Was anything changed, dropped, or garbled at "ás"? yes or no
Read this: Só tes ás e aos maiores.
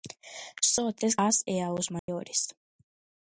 no